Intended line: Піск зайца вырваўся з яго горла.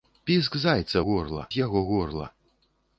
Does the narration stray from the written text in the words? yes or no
yes